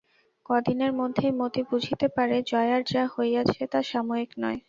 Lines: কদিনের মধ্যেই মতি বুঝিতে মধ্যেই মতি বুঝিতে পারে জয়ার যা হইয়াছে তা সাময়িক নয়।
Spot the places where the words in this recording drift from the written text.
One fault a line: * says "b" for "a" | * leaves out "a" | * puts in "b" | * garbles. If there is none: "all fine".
* leaves out "মধ্যেই মতি বুঝিতে"